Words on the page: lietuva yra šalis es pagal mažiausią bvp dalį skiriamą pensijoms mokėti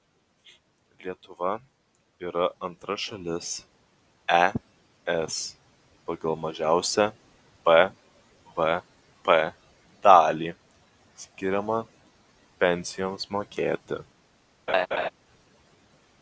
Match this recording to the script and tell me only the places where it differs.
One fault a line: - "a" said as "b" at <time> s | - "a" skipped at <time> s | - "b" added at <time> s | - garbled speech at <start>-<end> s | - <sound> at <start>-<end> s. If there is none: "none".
- "antra" added at 2.7 s
- laugh at 14.7-15.1 s